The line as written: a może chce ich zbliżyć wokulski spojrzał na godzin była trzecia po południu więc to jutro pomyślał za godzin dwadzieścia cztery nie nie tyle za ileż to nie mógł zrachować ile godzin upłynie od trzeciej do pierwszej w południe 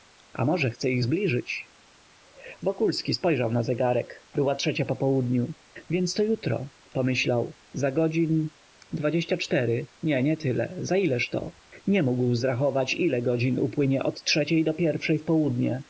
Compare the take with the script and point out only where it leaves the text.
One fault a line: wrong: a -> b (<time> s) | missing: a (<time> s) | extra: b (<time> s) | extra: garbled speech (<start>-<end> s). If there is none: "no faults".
wrong: godzin -> zegarek (3.6 s)